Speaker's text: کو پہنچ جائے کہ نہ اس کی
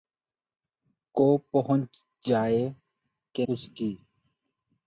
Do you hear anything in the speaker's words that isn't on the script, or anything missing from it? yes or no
yes